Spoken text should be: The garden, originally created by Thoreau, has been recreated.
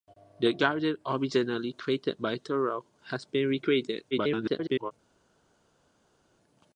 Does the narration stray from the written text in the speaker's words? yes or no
yes